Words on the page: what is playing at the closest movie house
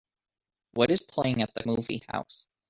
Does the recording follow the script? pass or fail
fail